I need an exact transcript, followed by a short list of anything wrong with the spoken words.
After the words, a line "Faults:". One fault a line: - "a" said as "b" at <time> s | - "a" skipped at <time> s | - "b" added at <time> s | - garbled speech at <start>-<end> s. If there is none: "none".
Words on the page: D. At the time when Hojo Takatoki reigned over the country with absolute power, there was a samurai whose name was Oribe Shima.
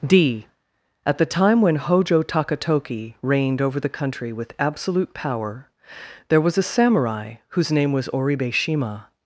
D. At the time when Hojo Takatoki reigned over the country with absolute power, there was a samurai whose name was Oribe Shima.
Faults:
none